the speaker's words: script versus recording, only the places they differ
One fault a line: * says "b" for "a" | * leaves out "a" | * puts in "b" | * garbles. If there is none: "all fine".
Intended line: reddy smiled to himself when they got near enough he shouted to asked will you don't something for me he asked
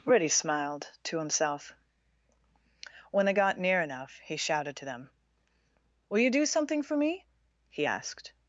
* says "them" for "asked"
* says "do" for "don't"